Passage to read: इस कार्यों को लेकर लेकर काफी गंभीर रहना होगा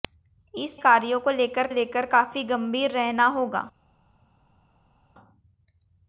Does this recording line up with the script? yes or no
yes